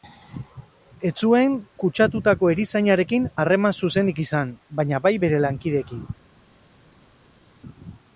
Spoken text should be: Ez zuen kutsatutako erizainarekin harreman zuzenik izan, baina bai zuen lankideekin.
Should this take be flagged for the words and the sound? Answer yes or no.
yes